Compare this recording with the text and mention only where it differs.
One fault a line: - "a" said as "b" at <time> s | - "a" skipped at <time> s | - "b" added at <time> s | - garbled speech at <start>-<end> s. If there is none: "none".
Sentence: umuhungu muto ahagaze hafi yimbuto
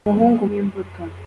- "muto ahagaze hafi" skipped at 0.4 s